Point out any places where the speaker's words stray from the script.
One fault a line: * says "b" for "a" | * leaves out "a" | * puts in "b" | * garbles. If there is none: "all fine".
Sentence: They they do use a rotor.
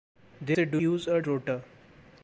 all fine